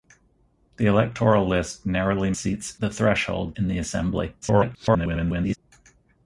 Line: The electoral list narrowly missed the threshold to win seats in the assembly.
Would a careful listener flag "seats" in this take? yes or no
yes